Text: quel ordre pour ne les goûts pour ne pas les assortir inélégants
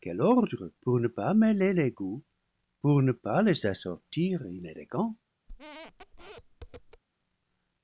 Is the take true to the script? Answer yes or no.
no